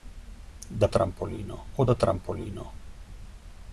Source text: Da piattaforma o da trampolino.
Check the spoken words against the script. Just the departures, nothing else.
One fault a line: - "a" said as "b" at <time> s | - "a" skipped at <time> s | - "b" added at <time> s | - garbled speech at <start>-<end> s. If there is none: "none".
- "piattaforma" said as "trampolino" at 0.9 s